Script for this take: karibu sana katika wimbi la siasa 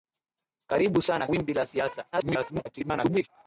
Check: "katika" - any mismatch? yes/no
yes